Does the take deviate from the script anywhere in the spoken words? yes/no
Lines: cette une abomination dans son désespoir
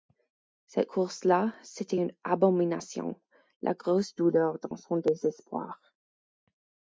yes